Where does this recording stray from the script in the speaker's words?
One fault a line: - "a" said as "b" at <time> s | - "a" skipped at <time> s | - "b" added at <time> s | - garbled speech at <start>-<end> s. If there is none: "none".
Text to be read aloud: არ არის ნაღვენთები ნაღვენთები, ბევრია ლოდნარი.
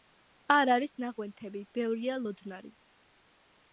- "ნაღვენთები" skipped at 1.6 s